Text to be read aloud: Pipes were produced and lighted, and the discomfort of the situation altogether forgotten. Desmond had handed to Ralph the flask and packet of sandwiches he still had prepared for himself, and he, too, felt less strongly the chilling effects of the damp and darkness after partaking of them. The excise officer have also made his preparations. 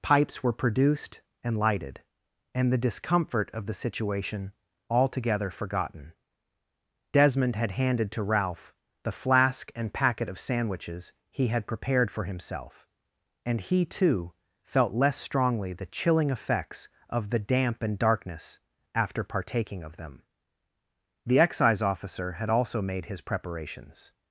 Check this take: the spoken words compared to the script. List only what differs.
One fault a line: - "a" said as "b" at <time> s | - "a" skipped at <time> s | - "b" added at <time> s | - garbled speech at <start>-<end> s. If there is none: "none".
- "still" skipped at 11.5 s
- "have" said as "had" at 22.3 s